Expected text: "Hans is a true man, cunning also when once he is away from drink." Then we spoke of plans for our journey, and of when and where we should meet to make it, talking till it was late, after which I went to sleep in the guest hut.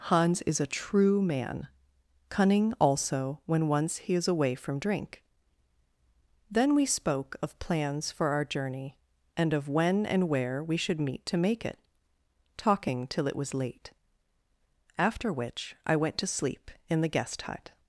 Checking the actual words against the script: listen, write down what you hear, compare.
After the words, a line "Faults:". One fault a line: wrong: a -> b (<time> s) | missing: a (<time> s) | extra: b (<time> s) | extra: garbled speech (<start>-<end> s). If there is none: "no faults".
"Hans is a true man, cunning also when once he is away from drink." Then we spoke of plans for our journey, and of when and where we should meet to make it, talking till it was late, after which I went to sleep in the guest hut.
Faults:
no faults